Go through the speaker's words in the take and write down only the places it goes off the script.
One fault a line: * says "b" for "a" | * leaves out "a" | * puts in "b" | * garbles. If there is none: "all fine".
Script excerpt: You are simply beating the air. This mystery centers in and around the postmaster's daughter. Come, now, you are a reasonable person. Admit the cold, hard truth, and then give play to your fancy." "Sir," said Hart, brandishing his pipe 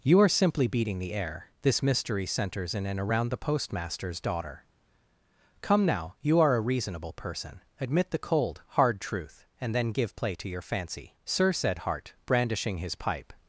all fine